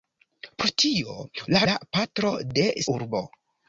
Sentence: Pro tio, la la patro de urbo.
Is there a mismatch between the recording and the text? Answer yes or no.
no